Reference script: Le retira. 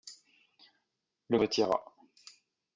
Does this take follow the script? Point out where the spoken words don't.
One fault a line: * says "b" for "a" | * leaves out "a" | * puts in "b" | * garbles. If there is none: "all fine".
all fine